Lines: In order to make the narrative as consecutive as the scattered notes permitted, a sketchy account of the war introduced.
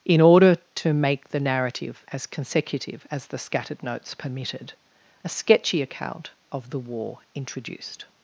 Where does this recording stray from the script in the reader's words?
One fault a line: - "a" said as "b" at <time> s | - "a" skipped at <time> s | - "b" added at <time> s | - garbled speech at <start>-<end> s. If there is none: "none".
none